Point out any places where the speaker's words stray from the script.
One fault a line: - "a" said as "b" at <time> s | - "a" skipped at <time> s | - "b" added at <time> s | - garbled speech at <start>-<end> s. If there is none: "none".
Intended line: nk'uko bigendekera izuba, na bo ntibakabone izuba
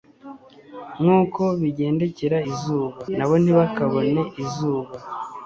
none